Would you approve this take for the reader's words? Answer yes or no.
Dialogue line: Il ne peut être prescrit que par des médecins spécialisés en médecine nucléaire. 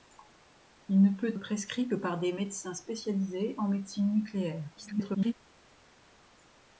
no